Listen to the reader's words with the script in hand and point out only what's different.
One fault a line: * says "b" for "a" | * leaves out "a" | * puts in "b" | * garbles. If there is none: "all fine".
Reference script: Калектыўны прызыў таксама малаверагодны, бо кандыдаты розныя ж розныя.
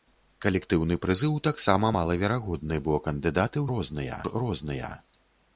all fine